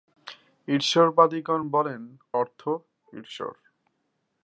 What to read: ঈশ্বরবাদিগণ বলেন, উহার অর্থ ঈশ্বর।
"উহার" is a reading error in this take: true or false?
true